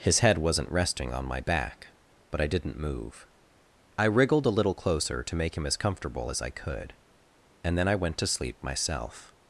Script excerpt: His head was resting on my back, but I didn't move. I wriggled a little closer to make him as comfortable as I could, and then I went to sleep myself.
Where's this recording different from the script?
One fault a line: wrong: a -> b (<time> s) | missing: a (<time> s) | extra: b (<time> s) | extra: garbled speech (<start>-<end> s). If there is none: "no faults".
wrong: was -> wasn't (0.4 s)